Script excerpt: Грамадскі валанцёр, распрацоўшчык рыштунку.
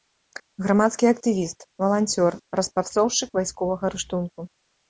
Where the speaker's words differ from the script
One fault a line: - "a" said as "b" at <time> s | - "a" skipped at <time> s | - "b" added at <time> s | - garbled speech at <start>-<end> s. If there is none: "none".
- "актывіст" added at 1.1 s
- "вайсковага" added at 3.4 s